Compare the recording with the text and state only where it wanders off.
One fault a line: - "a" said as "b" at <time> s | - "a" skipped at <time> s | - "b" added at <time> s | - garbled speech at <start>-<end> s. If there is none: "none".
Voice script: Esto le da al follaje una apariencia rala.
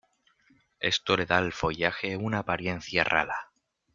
none